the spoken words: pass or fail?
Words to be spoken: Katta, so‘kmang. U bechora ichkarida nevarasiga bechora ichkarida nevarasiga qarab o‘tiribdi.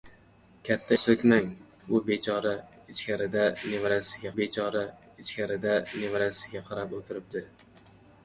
pass